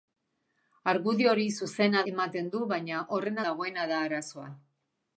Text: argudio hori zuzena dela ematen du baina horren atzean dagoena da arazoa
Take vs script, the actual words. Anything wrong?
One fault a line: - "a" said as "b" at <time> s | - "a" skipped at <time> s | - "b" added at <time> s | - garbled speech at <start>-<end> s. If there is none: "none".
- "dela" skipped at 2.0 s
- "atzean" skipped at 3.4 s